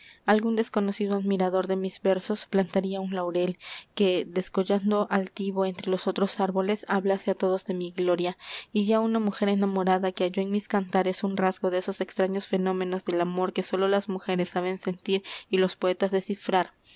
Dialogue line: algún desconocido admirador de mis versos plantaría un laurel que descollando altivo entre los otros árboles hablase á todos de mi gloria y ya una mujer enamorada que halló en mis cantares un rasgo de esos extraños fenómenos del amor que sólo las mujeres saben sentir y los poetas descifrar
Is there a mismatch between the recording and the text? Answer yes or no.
no